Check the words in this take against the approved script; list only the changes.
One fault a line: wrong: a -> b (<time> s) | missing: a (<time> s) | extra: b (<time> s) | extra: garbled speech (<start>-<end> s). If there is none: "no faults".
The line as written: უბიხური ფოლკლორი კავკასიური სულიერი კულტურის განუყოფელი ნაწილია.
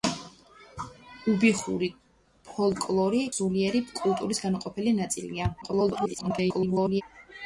missing: კავკასიური (3.2 s)
extra: garbled speech (5.6-7.0 s)